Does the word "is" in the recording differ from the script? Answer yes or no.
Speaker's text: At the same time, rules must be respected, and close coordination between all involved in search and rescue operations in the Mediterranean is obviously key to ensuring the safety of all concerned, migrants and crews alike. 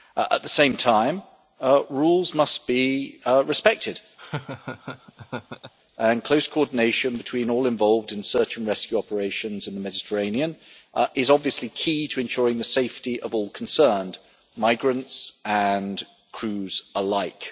no